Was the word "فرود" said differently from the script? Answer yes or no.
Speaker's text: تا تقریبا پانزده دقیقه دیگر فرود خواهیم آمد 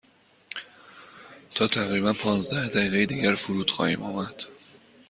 no